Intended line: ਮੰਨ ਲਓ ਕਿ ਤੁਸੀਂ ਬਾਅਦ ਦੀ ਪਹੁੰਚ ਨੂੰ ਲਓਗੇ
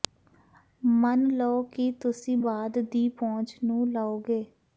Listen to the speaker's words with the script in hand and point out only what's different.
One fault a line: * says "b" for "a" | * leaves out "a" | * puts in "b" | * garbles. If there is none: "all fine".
all fine